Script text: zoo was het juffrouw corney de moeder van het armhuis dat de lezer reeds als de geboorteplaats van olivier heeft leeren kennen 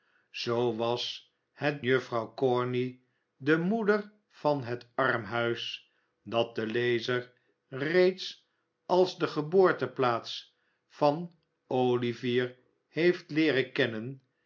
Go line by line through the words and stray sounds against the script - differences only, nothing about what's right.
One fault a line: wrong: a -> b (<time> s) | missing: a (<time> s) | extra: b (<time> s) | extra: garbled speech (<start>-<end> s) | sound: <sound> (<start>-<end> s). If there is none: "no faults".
no faults